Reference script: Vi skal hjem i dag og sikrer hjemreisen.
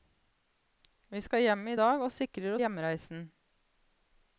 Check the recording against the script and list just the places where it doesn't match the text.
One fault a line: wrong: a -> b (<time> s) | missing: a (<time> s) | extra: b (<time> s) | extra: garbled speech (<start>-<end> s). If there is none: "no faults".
no faults